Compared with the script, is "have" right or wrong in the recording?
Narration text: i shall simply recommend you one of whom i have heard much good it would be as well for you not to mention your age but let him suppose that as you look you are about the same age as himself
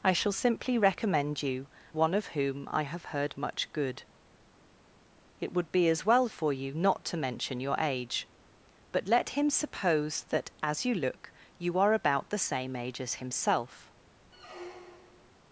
right